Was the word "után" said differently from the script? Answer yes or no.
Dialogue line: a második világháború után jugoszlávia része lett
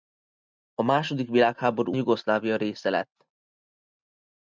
yes